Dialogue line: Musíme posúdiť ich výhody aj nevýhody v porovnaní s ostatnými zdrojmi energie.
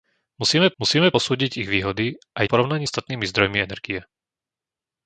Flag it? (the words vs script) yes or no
yes